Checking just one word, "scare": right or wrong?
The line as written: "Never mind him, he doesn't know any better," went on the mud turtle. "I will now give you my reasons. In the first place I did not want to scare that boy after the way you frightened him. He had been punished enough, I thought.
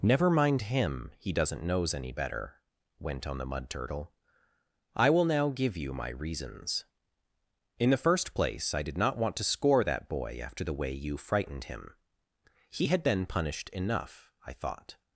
wrong